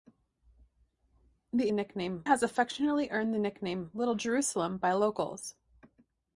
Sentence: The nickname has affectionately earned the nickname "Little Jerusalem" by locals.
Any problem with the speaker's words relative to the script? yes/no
no